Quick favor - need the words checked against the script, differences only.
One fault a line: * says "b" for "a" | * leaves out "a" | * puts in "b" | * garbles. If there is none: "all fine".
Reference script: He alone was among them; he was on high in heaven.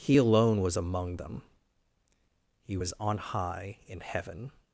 all fine